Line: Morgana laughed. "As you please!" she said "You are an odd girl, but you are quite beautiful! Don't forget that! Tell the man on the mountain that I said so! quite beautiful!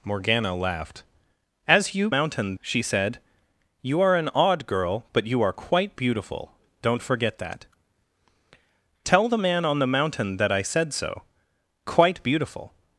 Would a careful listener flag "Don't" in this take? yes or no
no